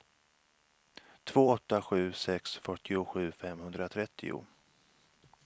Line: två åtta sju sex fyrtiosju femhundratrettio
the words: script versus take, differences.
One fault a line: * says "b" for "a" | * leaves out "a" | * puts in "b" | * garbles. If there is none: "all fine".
all fine